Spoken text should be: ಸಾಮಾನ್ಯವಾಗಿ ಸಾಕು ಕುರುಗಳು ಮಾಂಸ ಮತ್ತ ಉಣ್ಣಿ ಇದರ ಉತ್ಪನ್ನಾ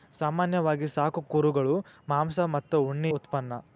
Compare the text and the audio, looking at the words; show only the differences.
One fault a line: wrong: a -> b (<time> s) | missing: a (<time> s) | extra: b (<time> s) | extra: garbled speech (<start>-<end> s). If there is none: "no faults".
missing: ಇದರ (3.1 s)